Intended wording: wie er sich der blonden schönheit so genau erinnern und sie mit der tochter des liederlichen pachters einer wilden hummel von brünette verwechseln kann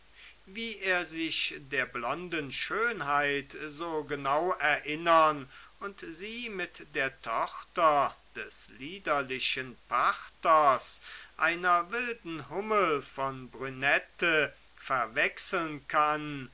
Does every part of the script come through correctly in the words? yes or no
yes